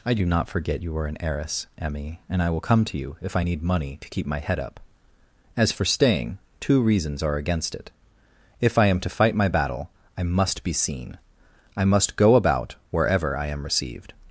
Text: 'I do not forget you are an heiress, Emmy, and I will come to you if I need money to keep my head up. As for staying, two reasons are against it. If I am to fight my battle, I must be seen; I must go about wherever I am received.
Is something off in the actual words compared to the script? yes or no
no